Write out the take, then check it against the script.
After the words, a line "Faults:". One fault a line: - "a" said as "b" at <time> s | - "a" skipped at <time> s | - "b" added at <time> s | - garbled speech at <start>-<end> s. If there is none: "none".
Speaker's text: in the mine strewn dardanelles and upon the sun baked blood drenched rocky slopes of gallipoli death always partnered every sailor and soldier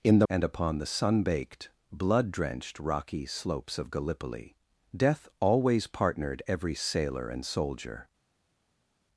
in the and upon the sun baked blood drenched rocky slopes of gallipoli death always partnered every sailor and soldier
Faults:
- "mine strewn dardanelles" skipped at 0.3 s